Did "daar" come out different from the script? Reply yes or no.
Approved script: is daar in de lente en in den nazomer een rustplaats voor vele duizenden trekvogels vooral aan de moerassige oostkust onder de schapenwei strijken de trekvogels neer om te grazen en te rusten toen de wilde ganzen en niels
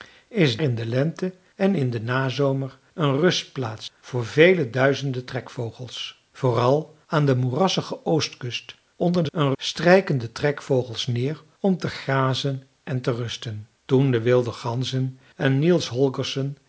yes